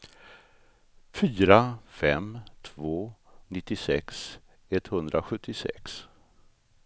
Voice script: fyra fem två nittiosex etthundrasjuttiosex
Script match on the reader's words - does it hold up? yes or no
yes